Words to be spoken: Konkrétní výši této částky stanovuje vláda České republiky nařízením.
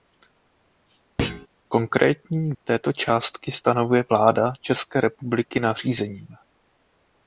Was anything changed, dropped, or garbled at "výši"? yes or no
yes